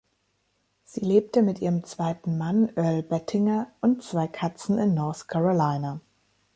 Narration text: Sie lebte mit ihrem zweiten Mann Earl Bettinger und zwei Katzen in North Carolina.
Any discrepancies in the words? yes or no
no